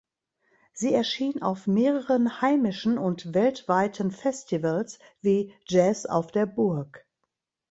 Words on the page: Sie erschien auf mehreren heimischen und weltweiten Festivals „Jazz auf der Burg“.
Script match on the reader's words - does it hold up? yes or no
no